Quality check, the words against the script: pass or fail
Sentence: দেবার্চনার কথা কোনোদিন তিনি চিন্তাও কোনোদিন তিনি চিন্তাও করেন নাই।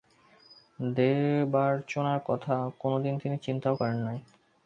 fail